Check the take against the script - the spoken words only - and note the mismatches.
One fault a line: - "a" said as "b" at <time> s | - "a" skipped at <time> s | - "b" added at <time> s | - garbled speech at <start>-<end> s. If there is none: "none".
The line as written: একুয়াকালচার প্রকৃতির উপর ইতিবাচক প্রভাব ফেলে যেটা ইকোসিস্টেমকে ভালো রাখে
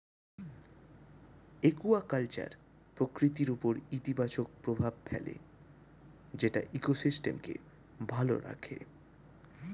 none